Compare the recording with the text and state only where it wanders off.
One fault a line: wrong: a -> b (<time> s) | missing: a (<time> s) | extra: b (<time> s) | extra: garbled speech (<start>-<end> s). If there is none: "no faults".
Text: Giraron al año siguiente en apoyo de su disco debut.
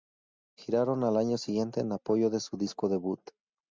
no faults